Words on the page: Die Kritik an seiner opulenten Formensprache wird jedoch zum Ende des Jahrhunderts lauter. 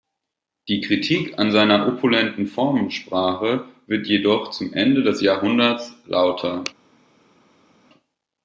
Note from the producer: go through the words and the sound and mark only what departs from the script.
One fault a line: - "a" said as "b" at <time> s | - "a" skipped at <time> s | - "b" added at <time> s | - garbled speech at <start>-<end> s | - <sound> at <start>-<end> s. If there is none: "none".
none